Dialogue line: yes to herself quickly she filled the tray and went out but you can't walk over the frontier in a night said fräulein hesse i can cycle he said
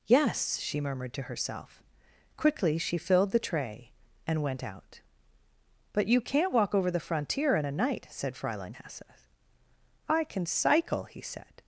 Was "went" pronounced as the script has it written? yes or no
yes